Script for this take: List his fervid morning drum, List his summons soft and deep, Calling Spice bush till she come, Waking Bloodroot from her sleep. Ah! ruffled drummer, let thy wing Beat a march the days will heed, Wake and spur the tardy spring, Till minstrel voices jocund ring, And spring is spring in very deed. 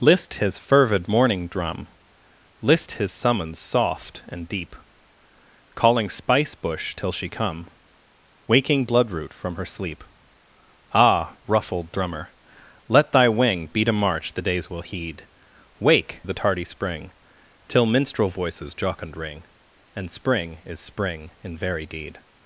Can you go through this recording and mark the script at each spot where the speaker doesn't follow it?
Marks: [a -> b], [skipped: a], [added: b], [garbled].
List his fervid morning drum, List his summons soft and deep, Calling Spice bush till she come, Waking Bloodroot from her sleep. Ah! ruffled drummer, let thy wing Beat a march the days will heed, Wake [skipped: and spur] the tardy spring, Till minstrel voices jocund ring, And spring is spring in very deed.